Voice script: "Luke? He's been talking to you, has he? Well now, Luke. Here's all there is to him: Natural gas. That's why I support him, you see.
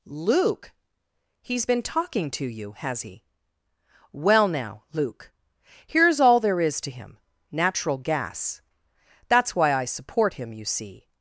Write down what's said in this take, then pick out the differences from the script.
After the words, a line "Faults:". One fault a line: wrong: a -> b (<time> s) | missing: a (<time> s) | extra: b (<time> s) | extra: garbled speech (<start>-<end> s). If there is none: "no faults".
"Luke? He's been talking to you, has he? Well now, Luke. Here's all there is to him: Natural gas. That's why I support him, you see.
Faults:
no faults